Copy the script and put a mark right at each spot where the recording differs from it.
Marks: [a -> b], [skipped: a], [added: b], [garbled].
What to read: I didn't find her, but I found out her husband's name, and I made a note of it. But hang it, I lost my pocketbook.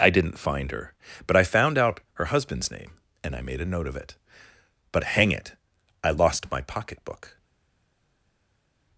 I didn't find her, but I found out her husband's name, and I made a note of it. But hang it, I lost my pocketbook.